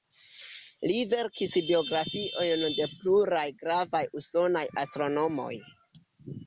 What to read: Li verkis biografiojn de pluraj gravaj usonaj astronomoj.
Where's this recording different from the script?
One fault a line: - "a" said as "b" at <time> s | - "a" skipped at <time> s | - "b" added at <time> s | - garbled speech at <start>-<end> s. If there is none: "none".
none